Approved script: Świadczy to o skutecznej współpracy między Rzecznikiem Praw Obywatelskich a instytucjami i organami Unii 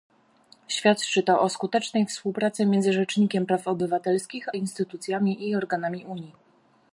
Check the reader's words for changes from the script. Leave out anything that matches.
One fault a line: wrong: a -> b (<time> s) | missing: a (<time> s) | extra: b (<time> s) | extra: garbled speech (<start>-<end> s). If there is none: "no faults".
missing: a (4.5 s)